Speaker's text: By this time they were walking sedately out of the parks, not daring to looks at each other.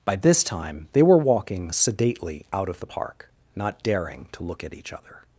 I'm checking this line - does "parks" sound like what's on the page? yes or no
no